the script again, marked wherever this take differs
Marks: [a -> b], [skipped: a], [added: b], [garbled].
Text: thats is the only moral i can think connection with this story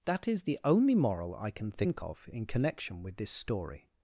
[thats -> that] is the only moral i can think [added: of in] connection with this story